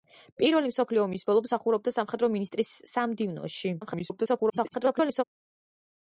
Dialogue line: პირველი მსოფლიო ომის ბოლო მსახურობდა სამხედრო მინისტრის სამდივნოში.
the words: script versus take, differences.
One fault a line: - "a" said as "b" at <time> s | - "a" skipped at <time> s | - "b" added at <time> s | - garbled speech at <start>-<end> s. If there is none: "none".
- garbled speech at 3.8-5.2 s